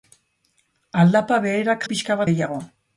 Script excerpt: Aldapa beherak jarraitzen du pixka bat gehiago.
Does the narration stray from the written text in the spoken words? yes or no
yes